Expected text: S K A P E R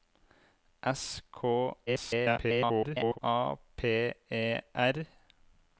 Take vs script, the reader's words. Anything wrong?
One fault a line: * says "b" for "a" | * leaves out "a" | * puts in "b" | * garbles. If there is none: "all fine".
* garbles